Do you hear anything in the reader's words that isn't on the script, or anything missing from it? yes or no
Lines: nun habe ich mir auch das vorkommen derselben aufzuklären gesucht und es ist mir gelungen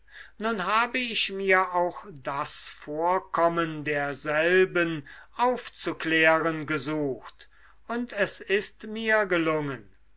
no